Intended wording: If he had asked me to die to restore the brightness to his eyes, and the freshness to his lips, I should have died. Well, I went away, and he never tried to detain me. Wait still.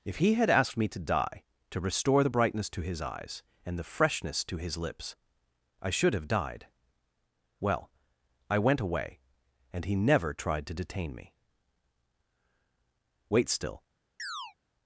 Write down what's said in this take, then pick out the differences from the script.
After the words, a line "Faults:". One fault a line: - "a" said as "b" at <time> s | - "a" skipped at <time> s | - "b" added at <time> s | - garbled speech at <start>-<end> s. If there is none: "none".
If he had asked me to die to restore the brightness to his eyes, and the freshness to his lips, I should have died. Well, I went away, and he never tried to detain me. Wait still.
Faults:
none